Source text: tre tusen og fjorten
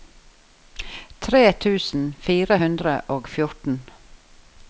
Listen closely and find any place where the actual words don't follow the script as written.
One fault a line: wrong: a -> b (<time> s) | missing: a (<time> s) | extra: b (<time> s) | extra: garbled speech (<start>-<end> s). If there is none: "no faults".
extra: fire hundre (2.3 s)